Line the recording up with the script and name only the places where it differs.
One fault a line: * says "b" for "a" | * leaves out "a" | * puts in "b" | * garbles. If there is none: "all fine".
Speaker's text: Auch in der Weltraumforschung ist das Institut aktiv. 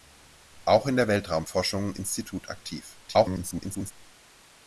* leaves out "ist das"
* garbles